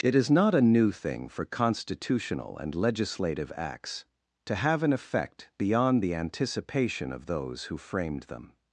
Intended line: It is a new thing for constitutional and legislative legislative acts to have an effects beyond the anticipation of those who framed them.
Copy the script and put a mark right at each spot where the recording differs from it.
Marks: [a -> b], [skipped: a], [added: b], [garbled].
It is [added: not] a new thing for constitutional and legislative [skipped: legislative] acts to have an [effects -> effect] beyond the anticipation of those who framed them.